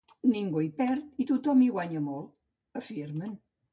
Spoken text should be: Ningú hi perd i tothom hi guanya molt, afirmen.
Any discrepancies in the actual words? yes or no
no